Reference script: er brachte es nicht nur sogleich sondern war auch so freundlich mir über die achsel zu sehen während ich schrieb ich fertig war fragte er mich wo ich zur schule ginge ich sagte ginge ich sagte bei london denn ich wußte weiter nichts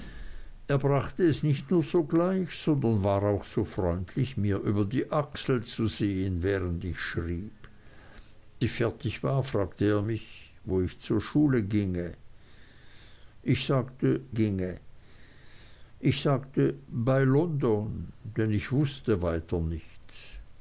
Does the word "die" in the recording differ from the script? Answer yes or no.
no